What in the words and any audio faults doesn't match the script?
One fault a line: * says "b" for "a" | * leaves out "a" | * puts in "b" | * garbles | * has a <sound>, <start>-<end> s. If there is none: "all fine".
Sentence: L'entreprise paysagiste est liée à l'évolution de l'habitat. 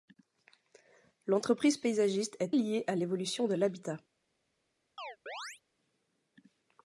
* has a chirp, 5.0-5.6 s